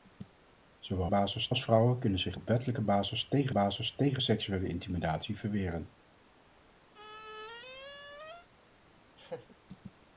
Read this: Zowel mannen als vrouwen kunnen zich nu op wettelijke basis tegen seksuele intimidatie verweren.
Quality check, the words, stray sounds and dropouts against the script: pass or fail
fail